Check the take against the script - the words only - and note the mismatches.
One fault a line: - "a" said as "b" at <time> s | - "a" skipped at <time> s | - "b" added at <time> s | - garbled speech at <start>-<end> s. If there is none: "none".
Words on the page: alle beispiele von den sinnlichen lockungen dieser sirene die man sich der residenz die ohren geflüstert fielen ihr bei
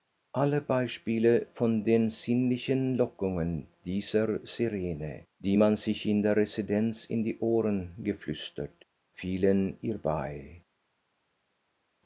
- "in" added at 6.1 s
- "in" added at 7.0 s